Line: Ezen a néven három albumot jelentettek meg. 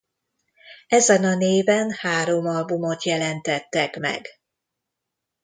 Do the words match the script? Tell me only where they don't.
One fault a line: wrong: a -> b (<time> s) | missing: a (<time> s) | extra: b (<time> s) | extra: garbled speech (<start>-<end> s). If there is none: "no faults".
no faults